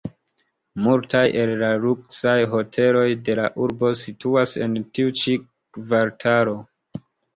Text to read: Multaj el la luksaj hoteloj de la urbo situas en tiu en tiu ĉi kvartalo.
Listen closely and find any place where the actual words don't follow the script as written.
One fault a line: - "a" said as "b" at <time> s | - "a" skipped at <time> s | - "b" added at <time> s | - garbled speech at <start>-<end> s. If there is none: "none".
- "en tiu" skipped at 5.1 s